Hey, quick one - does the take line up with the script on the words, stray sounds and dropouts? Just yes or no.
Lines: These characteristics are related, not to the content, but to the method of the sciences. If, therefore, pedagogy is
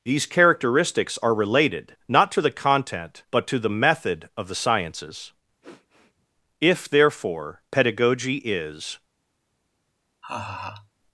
no